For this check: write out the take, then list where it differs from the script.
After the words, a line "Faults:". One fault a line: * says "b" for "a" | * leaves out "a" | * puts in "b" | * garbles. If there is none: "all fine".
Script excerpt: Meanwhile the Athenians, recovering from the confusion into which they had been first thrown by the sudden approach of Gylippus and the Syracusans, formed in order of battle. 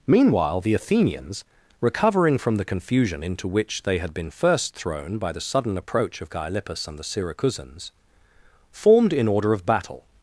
Meanwhile the Athenians, recovering from the confusion into which they had been first thrown by the sudden approach of Gylippus and the Syracusans, formed in order of battle.
Faults:
all fine